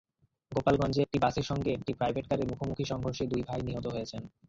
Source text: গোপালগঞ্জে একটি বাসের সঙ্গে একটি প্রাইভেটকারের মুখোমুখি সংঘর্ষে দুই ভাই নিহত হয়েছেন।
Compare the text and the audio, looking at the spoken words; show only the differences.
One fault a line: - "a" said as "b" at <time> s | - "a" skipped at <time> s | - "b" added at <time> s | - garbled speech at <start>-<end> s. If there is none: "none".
none